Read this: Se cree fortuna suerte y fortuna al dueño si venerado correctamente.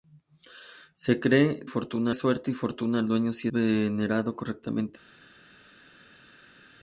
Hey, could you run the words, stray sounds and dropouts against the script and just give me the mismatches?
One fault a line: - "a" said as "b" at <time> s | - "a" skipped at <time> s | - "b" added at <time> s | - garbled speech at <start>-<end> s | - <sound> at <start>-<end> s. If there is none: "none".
none